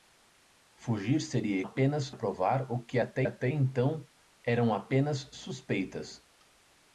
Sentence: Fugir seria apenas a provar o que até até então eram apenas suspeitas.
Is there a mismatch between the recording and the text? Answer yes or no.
no